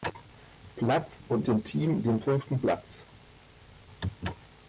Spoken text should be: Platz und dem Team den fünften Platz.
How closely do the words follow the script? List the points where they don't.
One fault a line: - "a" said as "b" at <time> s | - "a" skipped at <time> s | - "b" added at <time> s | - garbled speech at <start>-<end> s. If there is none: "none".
none